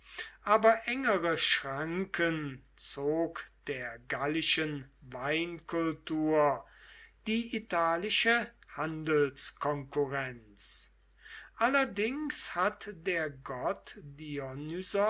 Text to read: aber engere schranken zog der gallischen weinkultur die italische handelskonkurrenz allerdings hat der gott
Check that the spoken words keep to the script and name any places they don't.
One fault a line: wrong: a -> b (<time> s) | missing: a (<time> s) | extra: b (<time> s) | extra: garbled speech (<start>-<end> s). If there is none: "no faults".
no faults